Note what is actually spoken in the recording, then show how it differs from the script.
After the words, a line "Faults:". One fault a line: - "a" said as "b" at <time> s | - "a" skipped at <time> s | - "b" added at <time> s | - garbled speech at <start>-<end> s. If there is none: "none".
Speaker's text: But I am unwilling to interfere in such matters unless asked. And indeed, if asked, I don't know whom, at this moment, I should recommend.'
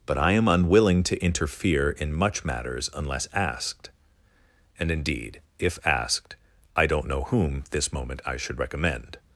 But I am unwilling to interfere in much matters unless asked. And indeed, if asked, I don't know whom, this moment, I should recommend.'
Faults:
- "such" said as "much" at 2.1 s
- "at" skipped at 7.6 s